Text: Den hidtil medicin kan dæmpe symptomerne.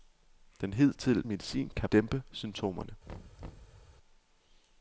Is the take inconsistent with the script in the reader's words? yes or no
no